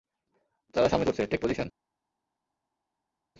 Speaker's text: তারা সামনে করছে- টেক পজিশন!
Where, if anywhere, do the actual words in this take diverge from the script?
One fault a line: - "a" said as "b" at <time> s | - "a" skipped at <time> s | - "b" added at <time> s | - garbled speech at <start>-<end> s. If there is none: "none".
none